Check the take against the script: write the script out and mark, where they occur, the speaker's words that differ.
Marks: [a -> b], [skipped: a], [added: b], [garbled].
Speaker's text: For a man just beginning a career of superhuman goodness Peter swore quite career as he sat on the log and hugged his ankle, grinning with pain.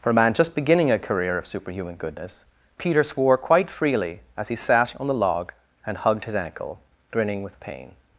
For a man just beginning a career of superhuman goodness Peter swore quite [career -> freely] as he sat on the log and hugged his ankle, grinning with pain.